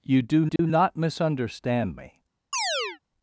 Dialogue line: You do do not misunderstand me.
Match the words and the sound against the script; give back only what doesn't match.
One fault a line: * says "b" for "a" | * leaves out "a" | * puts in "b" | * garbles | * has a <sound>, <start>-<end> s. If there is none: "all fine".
* has a dropout, 0.6-0.6 s
* has a chirp, 2.5-3.0 s